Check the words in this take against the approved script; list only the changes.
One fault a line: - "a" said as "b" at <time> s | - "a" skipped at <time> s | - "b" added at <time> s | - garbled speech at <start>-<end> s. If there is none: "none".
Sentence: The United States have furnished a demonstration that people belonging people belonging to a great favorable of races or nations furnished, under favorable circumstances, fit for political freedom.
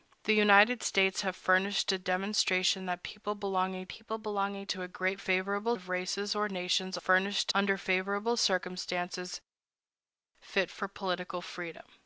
none